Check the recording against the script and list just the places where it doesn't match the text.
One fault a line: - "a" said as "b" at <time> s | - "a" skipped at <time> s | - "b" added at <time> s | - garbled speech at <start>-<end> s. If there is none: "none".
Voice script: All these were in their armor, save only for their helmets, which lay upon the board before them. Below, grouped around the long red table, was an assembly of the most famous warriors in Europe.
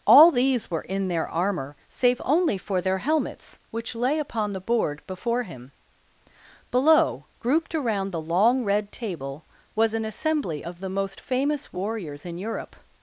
- "them" said as "him" at 5.4 s